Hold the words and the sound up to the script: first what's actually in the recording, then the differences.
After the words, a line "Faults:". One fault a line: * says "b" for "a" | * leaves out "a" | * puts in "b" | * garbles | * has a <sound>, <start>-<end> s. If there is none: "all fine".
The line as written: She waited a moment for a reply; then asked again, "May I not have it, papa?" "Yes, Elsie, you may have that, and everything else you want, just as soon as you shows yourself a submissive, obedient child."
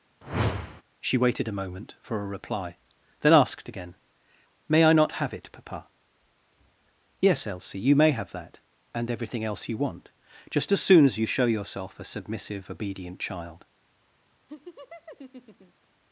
She waited a moment for a reply; then asked again, "May I not have it, papa?" "Yes, Elsie, you may have that, and everything else you want, just as soon as you show yourself a submissive, obedient child."
Faults:
* has a whoosh, 0.2-0.8 s
* says "show" for "shows"
* has a laugh, 14.5-15.9 s